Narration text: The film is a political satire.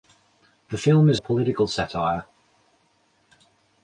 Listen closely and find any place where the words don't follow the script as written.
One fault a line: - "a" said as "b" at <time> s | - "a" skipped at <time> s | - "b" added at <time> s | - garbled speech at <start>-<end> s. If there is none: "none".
none